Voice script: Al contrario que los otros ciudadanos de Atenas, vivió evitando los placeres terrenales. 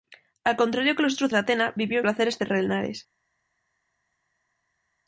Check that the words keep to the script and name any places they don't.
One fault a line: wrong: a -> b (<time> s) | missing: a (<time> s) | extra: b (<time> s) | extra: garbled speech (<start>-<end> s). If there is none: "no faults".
missing: ciudadanos (1.3 s)
missing: evitando los (2.0 s)